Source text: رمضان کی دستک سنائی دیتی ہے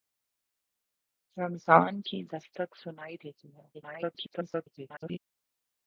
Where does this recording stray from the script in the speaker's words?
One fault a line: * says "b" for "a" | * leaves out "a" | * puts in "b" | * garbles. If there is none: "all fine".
* garbles